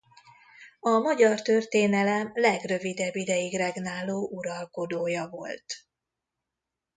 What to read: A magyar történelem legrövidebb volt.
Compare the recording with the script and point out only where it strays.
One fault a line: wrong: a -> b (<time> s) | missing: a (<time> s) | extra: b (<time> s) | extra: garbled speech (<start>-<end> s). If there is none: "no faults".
extra: ideig regnáló uralkodója (3.2 s)